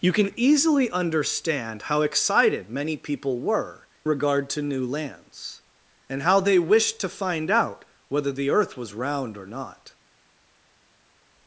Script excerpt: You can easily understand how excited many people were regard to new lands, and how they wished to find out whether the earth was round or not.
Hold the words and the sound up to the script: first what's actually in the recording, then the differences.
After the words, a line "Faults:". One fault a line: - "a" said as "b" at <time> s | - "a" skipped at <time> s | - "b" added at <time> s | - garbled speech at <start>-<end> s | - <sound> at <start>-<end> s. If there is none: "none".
You can easily understand how excited many people were regard to new lands, and how they wished to find out whether the earth was round or not.
Faults:
none